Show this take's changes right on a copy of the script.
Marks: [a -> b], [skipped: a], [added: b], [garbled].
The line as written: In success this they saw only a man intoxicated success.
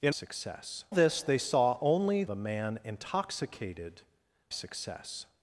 In success this they saw only a man intoxicated success.